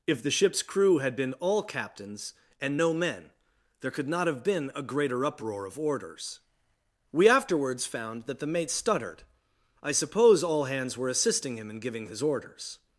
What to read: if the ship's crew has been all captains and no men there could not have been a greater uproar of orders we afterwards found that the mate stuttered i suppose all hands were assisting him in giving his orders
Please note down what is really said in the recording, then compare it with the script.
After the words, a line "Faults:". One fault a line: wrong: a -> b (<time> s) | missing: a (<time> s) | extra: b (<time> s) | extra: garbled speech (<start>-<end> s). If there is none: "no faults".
if the ship's crew had been all captains and no men there could not have been a greater uproar of orders we afterwards found that the mate stuttered i suppose all hands were assisting him in giving his orders
Faults:
wrong: has -> had (1.0 s)